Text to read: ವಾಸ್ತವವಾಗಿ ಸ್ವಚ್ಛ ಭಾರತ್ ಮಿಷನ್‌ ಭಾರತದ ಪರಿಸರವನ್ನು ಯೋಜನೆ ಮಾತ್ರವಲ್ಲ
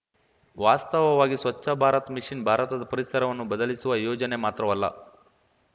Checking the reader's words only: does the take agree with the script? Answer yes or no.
no